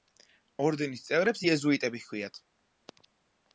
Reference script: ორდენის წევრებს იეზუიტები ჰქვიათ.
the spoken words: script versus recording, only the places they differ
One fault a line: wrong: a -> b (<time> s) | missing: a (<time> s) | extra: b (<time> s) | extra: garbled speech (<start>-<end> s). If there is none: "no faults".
no faults